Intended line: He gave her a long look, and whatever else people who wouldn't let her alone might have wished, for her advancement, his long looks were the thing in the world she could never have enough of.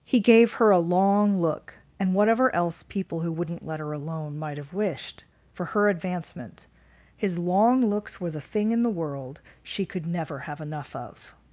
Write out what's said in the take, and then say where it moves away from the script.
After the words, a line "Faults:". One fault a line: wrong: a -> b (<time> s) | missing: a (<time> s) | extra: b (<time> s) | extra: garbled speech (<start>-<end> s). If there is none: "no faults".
He gave her a long look, and whatever else people who wouldn't let her alone might have wished, for her advancement, his long looks were the thing in the world she could never have enough of.
Faults:
no faults